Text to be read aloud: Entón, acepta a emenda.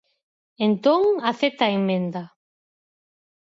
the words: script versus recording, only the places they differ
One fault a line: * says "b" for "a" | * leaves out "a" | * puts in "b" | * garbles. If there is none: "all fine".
all fine